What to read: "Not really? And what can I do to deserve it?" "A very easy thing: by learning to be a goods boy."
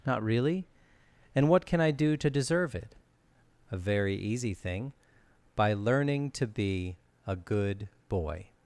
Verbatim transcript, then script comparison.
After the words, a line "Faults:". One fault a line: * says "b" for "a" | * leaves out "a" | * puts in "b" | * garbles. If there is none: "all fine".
"Not really? And what can I do to deserve it?" "A very easy thing: by learning to be a good boy."
Faults:
* says "good" for "goods"